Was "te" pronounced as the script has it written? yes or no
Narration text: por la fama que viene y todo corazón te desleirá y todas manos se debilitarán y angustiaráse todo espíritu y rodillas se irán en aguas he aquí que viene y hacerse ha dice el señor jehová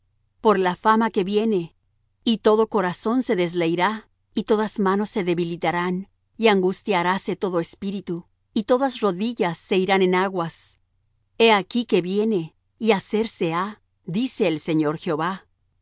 no